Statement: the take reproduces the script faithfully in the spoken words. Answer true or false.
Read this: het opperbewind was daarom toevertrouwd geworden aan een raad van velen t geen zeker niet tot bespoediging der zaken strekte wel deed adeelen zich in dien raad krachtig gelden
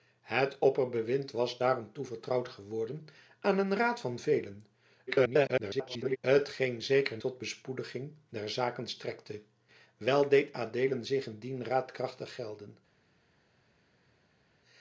false